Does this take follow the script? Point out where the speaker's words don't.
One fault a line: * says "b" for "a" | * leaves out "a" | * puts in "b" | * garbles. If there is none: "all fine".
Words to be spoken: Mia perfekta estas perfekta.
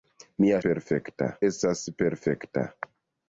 all fine